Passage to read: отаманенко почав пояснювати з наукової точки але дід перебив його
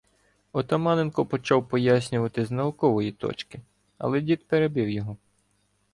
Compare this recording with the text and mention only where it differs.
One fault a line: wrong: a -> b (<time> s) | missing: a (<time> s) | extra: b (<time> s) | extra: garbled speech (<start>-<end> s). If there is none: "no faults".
no faults